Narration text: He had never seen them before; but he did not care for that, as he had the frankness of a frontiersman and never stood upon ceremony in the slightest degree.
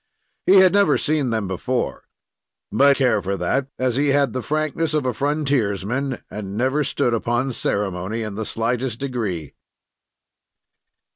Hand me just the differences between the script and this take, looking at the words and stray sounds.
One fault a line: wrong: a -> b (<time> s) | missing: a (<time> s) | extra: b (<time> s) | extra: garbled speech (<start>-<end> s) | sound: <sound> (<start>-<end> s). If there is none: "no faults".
missing: he did not (2.9 s)